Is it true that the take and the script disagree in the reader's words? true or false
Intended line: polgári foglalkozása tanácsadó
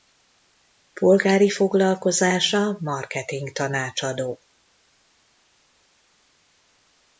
true